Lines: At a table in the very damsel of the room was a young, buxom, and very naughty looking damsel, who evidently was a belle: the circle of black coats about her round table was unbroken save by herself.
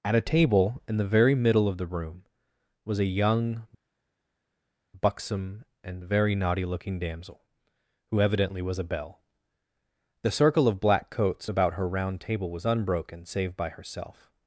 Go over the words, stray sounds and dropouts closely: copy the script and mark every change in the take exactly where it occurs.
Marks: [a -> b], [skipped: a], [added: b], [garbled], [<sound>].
At a table in the very [damsel -> middle] of the room was a young, buxom, and very naughty looking damsel, who evidently was a belle: the circle of black coats about her round table was unbroken save by herself.